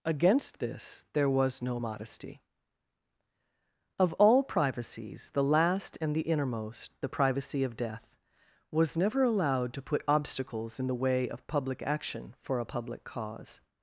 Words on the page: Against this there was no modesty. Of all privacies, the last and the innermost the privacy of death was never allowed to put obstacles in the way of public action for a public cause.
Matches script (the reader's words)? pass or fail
pass